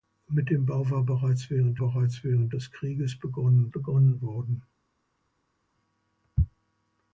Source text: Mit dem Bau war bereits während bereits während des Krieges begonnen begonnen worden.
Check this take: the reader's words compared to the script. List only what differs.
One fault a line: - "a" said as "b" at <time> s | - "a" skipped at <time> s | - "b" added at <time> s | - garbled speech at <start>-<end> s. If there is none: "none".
none